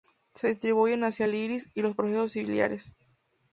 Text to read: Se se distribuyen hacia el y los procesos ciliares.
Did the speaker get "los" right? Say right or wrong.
right